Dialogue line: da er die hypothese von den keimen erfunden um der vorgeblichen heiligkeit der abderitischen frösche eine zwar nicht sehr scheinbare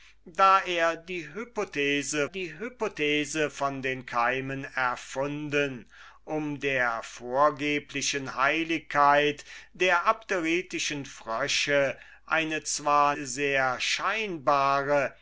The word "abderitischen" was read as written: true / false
true